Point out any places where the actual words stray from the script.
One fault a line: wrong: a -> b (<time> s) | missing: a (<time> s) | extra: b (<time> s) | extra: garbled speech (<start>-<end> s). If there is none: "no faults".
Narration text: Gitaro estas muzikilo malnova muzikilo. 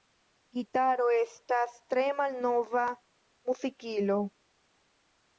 wrong: muzikilo -> tre (1.9 s)